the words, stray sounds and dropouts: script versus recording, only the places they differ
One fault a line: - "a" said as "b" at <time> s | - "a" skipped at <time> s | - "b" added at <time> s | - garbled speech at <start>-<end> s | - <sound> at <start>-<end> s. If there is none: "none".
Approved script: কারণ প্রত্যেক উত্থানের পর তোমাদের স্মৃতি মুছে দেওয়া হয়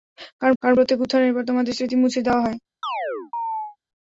- "কারণ" added at 0.6 s
- chirp at 2.8-3.8 s